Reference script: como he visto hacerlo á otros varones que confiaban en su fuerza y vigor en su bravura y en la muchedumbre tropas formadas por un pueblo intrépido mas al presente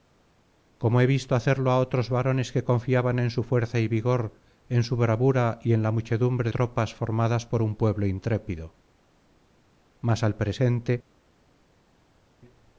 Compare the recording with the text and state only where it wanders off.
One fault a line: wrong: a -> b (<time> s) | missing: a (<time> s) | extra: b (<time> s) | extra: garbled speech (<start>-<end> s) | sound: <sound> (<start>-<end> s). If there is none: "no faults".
no faults